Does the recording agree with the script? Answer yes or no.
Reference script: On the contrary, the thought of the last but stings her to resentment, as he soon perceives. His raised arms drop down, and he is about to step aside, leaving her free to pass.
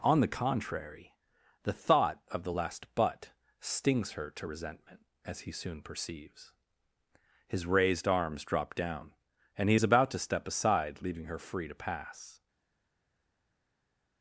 yes